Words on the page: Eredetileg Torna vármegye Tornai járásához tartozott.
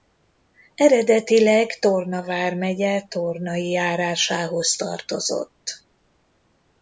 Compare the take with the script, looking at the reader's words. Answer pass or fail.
pass